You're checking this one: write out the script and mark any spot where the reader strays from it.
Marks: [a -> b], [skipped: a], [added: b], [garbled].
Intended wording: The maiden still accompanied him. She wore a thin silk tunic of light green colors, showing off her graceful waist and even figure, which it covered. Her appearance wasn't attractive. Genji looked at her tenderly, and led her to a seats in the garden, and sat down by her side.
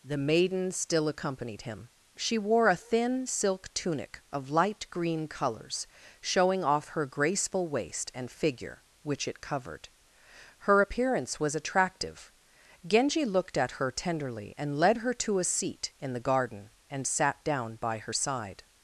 The maiden still accompanied him. She wore a thin silk tunic of light green colors, showing off her graceful waist and [skipped: even] figure, which it covered. Her appearance [wasn't -> was] attractive. Genji looked at her tenderly, and led her to a [seats -> seat] in the garden, and sat down by her side.